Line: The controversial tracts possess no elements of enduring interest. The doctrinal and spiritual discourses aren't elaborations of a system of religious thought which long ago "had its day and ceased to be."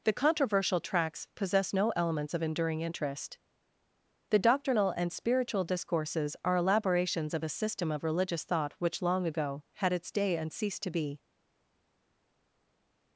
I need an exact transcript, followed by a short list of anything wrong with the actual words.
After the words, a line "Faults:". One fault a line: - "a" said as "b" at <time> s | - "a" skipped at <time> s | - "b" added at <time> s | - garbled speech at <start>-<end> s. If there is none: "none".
The controversial tracts possess no elements of enduring interest. The doctrinal and spiritual discourses are elaborations of a system of religious thought which long ago "had its day and ceased to be."
Faults:
- "aren't" said as "are" at 6.4 s